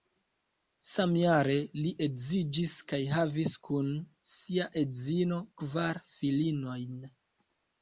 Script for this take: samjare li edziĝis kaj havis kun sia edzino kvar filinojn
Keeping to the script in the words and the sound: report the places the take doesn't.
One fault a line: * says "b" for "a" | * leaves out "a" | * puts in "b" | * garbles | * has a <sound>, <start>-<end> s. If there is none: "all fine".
all fine